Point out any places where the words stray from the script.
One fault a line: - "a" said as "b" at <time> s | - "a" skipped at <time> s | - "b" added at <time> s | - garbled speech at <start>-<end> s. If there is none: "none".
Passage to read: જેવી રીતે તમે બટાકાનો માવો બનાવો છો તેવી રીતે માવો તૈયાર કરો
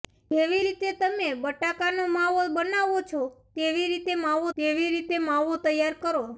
- "તેવી રીતે માવો" added at 4.6 s